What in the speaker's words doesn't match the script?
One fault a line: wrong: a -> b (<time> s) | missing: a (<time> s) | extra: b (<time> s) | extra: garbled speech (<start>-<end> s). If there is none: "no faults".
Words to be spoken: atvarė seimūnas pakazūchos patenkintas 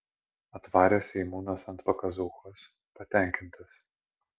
extra: ant (1.8 s)